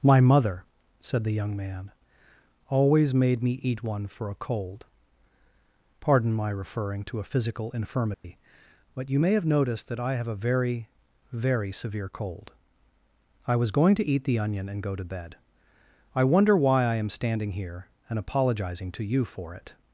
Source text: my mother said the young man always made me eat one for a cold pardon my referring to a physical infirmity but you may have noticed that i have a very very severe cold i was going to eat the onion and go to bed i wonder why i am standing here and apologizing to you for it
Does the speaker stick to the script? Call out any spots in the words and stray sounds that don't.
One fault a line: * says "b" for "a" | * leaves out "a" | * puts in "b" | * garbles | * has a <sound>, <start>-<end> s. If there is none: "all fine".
* has a dropout, 8.1-8.2 s